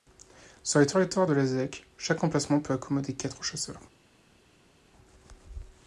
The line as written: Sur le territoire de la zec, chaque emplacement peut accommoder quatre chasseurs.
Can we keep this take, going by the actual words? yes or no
yes